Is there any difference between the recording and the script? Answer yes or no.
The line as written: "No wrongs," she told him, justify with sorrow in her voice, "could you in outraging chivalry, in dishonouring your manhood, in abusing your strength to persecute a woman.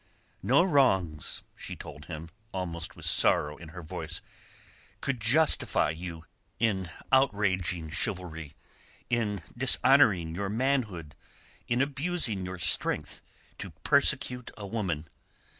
yes